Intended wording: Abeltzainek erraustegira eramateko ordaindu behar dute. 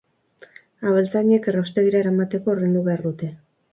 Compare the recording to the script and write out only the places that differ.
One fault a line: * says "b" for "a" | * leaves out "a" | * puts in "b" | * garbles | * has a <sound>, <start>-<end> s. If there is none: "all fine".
all fine